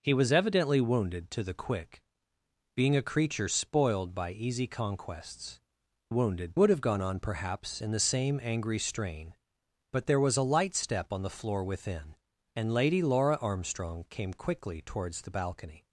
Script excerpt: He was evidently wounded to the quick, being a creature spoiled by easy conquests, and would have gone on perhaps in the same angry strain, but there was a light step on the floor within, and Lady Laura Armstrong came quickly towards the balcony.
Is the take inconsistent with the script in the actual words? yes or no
yes